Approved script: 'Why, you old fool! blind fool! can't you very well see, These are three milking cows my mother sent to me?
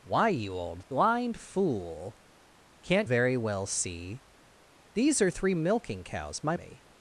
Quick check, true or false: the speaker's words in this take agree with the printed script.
false